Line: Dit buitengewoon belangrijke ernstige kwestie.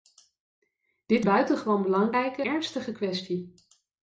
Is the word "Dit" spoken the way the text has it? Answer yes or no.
yes